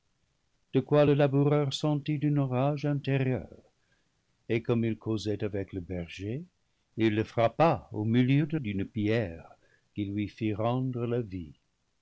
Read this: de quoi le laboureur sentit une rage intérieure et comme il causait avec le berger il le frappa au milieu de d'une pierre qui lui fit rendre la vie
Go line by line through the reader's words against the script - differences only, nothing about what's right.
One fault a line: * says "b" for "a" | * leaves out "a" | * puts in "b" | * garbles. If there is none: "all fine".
all fine